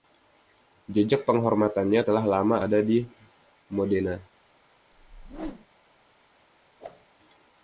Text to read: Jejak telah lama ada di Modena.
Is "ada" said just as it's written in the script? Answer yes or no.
yes